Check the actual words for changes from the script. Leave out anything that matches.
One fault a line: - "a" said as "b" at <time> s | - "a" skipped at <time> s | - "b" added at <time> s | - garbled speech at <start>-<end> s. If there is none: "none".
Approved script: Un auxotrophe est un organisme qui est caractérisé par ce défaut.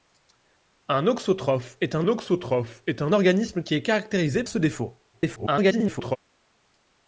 - "auxotrophe est un" added at 2.1 s
- "par" skipped at 4.4 s
- garbled speech at 5.1-6.2 s